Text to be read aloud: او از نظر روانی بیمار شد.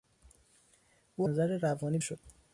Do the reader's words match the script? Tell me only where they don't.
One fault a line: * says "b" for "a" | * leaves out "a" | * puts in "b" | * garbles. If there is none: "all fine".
* leaves out "از"
* leaves out "بیمار"